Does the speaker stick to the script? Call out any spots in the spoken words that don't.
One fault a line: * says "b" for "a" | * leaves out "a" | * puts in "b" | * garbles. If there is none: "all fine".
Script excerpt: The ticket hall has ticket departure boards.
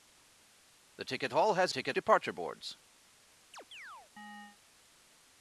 all fine